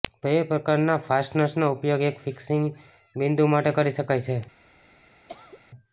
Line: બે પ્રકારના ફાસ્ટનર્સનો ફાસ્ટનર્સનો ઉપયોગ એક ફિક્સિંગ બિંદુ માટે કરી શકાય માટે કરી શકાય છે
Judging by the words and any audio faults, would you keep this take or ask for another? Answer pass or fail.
fail